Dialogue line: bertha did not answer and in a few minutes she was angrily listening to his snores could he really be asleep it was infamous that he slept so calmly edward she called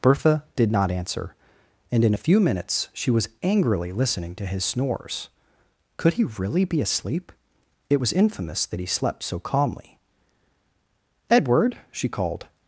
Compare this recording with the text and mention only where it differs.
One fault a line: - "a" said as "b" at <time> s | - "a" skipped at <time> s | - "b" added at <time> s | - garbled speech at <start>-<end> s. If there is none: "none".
none